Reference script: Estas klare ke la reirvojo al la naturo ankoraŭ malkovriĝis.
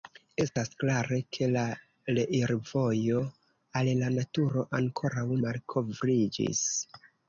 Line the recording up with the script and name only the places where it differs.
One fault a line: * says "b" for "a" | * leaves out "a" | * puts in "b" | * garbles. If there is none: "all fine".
all fine